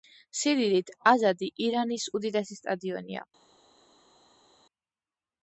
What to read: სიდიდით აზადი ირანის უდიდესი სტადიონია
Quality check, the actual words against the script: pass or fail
pass